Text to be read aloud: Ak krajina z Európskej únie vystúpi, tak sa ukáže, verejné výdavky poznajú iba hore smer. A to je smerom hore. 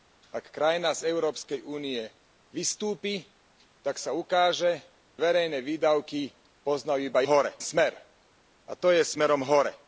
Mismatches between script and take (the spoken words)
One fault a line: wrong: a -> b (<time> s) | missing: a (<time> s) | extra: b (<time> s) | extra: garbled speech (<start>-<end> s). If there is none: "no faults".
no faults